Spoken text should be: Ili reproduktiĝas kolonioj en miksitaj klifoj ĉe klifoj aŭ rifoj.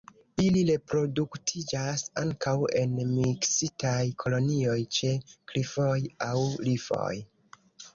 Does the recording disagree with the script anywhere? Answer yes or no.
yes